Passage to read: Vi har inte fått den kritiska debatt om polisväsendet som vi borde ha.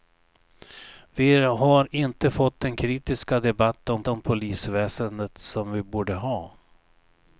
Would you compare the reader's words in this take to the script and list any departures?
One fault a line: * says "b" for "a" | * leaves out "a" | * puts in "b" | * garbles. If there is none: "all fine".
* puts in "om"